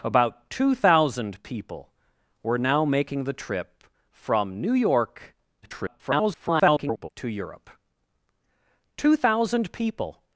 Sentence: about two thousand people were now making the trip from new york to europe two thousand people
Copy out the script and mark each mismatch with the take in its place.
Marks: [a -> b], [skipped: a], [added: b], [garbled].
about two thousand people were now making the trip from new york [garbled] to europe two thousand people